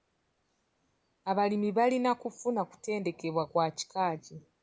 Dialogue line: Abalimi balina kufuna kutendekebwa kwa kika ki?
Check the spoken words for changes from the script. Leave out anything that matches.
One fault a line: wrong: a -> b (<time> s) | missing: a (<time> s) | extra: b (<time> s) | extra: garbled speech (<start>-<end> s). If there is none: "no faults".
no faults